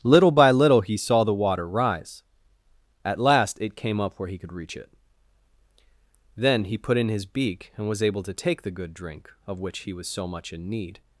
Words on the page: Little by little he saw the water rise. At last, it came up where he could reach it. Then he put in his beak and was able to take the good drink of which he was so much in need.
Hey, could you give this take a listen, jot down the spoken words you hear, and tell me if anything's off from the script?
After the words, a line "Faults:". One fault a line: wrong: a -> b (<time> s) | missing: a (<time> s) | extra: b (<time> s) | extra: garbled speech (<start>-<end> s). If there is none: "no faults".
Little by little he saw the water rise. At last, it came up where he could reach it. Then he put in his beak and was able to take the good drink of which he was so much in need.
Faults:
no faults